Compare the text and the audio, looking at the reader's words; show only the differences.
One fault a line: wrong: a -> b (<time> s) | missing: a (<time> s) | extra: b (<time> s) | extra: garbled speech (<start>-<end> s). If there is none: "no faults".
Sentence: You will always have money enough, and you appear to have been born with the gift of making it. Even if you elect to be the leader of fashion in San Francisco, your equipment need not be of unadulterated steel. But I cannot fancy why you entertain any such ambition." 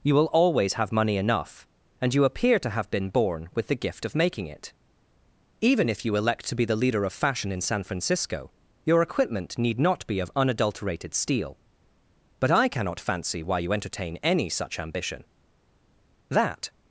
extra: That (16.3 s)